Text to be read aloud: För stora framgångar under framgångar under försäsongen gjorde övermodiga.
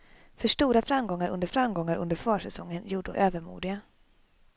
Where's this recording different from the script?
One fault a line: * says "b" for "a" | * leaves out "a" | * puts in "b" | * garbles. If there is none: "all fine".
all fine